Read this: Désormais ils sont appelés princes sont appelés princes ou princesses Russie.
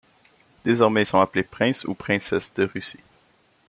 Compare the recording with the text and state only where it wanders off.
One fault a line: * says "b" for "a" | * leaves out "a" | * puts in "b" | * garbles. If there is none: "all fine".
* leaves out "sont appelés princes"
* puts in "de"